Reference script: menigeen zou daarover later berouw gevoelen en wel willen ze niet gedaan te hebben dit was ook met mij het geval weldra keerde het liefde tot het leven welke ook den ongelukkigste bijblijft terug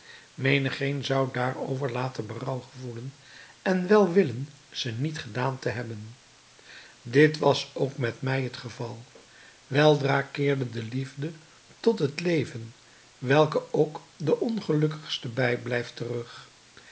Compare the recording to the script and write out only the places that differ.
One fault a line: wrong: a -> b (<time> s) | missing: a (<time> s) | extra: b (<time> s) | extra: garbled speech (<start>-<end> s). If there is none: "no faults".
wrong: het -> de (10.7 s)